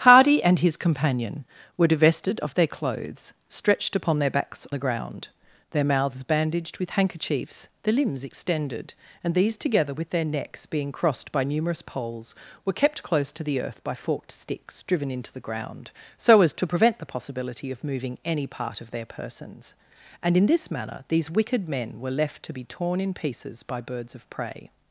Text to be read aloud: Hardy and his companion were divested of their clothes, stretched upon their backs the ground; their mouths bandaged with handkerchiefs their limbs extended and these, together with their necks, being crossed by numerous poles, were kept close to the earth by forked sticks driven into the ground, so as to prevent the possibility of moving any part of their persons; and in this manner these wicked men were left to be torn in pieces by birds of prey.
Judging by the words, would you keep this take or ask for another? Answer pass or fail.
pass